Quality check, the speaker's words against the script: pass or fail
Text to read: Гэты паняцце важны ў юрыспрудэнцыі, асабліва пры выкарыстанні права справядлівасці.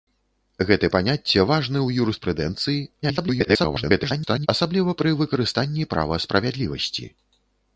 fail